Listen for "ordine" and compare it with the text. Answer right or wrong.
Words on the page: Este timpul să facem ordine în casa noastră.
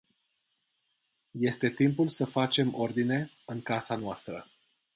right